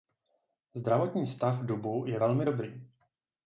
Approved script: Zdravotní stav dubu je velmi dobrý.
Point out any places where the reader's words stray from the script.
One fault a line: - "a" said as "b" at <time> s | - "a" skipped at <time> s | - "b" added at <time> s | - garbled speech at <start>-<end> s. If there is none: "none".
none